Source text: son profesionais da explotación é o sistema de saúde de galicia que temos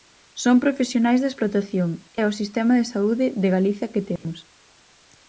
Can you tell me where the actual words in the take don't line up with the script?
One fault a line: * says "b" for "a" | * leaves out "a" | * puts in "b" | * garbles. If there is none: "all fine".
all fine